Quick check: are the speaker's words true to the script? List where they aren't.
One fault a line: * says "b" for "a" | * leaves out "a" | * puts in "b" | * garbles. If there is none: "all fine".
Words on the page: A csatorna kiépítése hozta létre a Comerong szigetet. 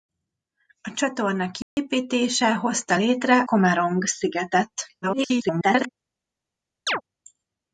* leaves out "a"
* garbles